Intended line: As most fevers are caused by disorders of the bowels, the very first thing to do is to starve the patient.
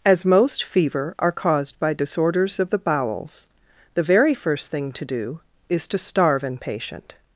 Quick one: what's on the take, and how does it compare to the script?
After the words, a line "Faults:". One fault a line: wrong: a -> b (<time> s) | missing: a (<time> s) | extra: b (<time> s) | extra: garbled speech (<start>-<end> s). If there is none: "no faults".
As most fever are caused by disorders of the bowels, the very first thing to do is to starve an patient.
Faults:
wrong: fevers -> fever (0.6 s)
wrong: the -> an (6.4 s)